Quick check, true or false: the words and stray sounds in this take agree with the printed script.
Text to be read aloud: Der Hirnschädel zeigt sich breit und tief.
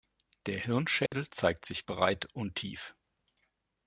false